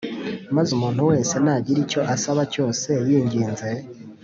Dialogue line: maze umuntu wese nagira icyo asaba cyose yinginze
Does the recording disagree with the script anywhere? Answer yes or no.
no